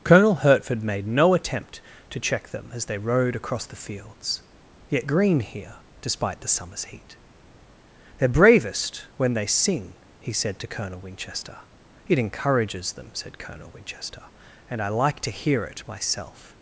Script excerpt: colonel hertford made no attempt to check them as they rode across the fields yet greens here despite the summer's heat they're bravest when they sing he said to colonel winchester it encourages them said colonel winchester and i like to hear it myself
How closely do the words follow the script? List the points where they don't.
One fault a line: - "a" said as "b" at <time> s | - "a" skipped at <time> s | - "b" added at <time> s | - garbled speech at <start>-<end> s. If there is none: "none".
- "greens" said as "green" at 5.1 s